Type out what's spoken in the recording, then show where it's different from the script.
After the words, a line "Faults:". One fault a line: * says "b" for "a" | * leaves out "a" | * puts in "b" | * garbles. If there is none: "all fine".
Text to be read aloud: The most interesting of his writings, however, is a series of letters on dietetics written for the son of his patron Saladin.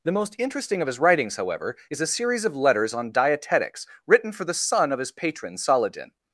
The most interesting of his writings, however, is a series of letters on dietetics written for the son of his patron Saladin.
Faults:
all fine